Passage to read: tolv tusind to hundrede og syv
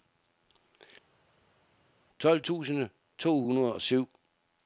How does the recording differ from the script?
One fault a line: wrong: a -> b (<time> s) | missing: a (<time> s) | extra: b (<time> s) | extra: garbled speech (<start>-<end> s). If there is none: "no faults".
no faults